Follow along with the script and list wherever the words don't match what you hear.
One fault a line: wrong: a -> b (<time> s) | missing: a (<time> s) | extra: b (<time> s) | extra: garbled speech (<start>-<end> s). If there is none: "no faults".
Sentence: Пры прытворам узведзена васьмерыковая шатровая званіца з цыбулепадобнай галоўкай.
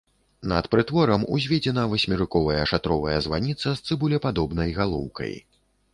wrong: Пры -> Над (0.5 s)